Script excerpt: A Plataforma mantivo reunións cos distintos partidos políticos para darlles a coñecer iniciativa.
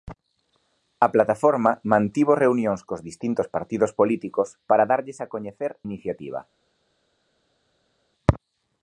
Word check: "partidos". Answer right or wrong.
right